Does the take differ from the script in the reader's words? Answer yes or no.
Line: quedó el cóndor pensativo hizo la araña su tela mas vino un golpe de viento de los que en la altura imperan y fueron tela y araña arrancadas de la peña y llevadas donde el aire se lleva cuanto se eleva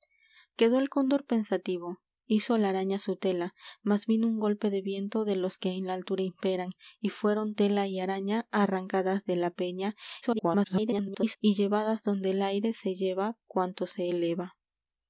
yes